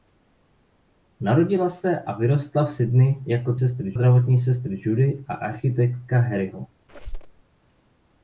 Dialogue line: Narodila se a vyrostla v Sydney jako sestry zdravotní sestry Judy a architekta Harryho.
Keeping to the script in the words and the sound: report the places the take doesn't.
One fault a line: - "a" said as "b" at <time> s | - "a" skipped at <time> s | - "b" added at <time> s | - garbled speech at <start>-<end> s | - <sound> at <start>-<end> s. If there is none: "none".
- squeak at 6.9-7.4 s